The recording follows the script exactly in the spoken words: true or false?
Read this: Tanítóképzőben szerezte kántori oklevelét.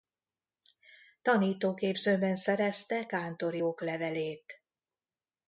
true